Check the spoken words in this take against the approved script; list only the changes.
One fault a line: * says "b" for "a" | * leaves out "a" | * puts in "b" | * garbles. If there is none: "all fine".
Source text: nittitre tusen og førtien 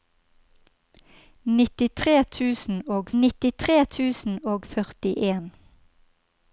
* puts in "nittitre tusen og"